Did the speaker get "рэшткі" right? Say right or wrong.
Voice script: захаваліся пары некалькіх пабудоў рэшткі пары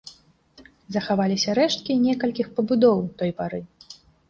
wrong